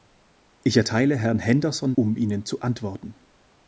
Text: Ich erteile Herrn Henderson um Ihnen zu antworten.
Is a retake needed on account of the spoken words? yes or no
no